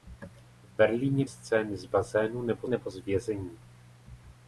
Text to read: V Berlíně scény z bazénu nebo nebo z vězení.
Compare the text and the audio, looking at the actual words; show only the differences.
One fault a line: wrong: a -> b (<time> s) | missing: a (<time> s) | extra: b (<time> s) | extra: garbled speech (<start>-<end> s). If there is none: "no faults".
no faults